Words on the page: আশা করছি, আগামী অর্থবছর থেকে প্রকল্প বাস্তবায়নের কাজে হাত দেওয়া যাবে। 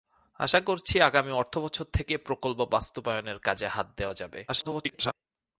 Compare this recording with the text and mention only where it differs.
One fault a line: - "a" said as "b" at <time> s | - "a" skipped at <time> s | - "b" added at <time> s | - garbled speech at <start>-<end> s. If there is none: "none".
- garbled speech at 4.5-5.1 s